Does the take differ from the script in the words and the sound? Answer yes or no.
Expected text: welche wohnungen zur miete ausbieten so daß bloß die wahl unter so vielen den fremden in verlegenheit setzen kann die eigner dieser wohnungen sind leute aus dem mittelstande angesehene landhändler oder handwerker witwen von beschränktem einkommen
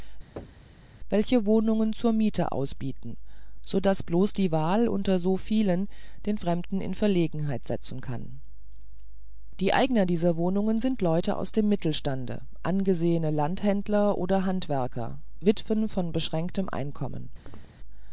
yes